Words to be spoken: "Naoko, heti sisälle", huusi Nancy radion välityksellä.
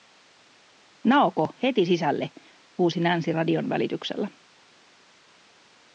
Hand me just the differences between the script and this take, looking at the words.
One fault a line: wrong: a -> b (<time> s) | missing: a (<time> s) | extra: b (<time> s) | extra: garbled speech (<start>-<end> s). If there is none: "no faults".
no faults